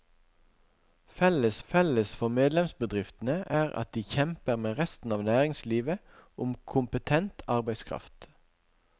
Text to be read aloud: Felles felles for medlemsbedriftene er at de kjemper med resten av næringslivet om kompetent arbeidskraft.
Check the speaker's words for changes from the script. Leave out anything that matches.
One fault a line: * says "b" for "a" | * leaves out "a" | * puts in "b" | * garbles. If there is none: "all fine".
all fine